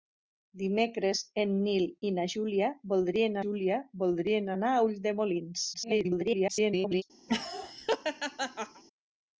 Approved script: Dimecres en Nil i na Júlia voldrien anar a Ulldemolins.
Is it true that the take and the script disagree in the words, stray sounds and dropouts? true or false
true